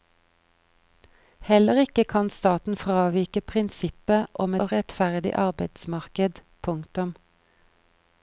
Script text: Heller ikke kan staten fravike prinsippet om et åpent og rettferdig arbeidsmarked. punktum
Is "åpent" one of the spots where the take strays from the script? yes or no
yes